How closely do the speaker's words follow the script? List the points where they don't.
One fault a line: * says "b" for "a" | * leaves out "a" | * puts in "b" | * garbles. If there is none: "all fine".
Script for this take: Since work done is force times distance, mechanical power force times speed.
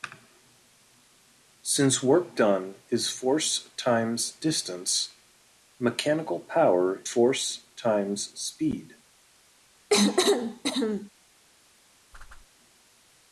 all fine